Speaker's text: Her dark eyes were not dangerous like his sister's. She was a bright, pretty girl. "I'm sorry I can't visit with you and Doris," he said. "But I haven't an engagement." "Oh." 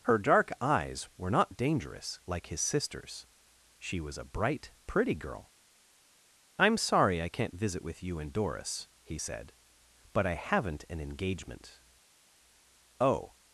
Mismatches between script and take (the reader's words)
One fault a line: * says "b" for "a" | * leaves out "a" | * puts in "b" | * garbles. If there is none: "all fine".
all fine